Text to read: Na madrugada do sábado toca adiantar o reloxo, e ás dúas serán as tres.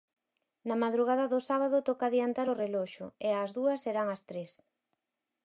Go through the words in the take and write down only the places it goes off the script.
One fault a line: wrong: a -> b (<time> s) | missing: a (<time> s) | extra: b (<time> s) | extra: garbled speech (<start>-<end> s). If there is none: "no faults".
no faults